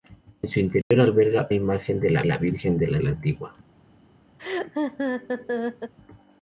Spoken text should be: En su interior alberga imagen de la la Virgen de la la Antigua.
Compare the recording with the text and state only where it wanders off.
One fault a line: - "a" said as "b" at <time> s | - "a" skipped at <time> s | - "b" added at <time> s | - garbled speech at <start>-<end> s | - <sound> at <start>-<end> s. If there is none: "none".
- dropout at 0.8-0.9 s
- laugh at 4.4-5.9 s